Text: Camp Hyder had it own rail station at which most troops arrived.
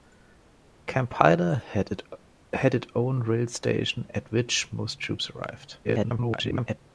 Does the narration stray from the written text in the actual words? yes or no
yes